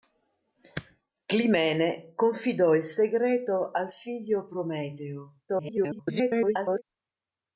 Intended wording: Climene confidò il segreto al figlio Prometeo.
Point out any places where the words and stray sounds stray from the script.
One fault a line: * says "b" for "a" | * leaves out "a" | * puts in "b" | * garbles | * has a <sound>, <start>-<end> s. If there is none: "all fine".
* garbles